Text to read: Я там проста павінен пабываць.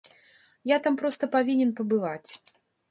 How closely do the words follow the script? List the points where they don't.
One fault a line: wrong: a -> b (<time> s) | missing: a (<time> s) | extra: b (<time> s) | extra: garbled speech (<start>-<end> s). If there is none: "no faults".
no faults